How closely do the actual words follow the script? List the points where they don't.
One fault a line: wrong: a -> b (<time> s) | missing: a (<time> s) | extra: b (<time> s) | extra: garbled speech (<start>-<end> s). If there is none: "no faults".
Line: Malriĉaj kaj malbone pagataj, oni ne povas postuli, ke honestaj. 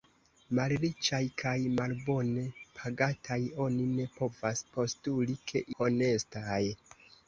no faults